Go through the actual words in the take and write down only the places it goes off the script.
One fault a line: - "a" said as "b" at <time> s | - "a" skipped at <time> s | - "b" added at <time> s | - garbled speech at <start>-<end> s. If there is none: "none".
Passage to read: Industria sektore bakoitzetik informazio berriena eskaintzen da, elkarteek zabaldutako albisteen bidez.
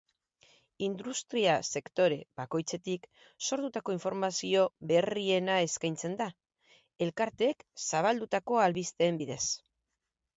- "sortutako" added at 3.5 s